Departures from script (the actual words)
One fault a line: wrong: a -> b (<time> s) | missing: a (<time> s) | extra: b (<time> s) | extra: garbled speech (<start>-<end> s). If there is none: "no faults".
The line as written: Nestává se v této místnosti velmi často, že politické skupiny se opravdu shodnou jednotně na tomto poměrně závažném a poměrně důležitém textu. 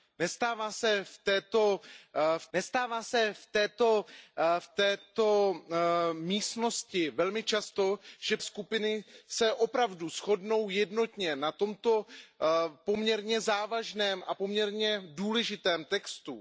extra: nestává se v (2.5 s)
missing: politické (8.4 s)